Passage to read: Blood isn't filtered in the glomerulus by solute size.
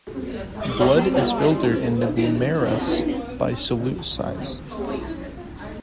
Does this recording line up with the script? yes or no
no